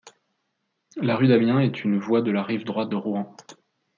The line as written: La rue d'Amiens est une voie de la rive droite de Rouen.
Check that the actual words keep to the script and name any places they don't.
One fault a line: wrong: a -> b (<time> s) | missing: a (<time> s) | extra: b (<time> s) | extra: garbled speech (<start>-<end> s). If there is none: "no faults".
no faults